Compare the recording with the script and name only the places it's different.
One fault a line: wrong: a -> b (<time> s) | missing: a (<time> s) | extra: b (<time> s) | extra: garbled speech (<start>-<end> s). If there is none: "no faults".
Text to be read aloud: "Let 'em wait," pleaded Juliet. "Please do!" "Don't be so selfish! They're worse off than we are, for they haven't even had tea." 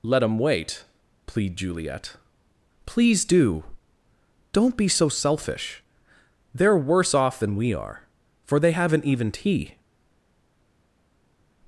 wrong: pleaded -> plead (1.2 s)
missing: had (9.3 s)